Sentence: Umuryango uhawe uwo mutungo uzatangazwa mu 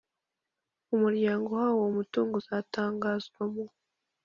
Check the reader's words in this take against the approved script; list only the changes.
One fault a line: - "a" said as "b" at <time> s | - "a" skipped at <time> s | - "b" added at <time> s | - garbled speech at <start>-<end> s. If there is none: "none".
none